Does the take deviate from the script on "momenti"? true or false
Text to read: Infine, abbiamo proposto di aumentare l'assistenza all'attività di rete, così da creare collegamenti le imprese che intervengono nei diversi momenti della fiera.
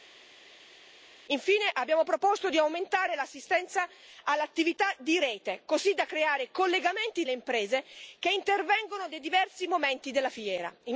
false